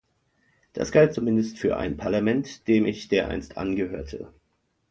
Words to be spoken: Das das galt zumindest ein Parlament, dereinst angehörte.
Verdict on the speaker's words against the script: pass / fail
fail